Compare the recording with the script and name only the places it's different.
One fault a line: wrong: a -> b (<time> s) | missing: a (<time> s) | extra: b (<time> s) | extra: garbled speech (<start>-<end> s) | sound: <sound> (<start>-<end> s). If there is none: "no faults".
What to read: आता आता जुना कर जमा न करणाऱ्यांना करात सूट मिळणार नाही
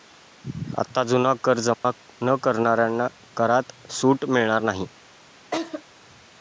missing: आता (1.0 s)
sound: dropout (1.7-1.8 s)
sound: laugh (5.5-5.8 s)